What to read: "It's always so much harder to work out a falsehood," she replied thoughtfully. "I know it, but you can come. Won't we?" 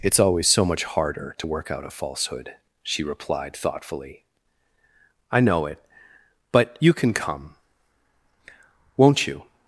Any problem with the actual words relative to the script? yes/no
yes